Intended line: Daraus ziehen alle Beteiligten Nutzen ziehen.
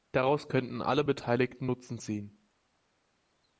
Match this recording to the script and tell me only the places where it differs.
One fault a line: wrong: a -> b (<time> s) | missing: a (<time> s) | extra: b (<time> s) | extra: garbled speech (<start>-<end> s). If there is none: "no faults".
wrong: ziehen -> könnten (0.5 s)